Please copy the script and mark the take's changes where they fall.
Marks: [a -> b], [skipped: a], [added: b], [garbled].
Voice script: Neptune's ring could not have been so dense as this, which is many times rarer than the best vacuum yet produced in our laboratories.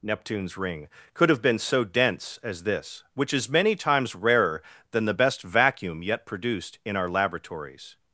Neptune's ring could [skipped: not] have been so dense as this, which is many times rarer than the best vacuum yet produced in our laboratories.